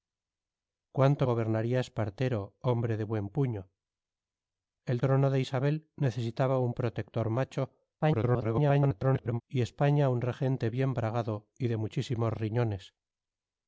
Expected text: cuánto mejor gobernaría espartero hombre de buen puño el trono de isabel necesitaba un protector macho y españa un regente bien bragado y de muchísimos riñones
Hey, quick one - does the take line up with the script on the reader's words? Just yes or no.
no